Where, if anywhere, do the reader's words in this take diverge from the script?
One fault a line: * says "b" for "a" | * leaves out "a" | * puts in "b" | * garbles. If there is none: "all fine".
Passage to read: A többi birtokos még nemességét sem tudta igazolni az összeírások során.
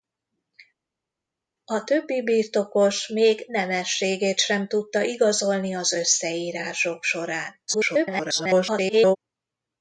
* garbles